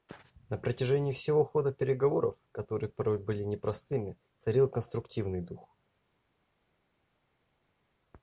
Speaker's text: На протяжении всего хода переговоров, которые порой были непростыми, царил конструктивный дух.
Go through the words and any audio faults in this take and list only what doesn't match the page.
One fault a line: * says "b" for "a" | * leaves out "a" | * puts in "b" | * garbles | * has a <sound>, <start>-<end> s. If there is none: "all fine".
all fine